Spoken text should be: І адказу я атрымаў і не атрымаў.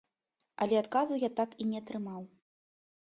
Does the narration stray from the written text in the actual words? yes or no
yes